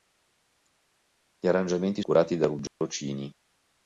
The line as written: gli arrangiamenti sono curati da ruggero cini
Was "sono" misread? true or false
true